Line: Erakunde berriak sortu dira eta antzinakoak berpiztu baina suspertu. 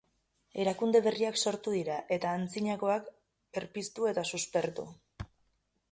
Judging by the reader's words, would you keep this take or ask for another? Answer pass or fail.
fail